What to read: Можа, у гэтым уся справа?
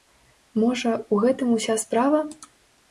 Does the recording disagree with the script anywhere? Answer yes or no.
no